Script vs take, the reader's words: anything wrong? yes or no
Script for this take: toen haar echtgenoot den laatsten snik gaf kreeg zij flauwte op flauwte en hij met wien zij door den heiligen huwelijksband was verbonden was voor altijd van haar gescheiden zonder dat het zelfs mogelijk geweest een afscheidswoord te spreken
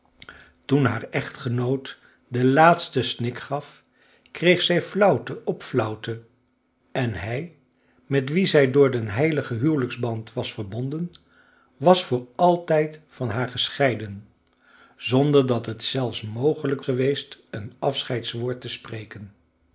no